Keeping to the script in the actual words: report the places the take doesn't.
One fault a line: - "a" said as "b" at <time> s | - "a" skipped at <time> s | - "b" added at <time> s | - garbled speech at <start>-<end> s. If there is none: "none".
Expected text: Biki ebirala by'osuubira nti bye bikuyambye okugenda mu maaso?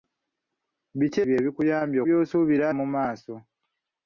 - "ebirala by'osuubira nti" skipped at 1.2 s
- "okugenda" said as "by'osuubira" at 2.1 s